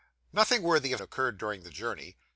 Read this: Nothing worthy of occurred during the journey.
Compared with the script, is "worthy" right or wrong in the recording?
right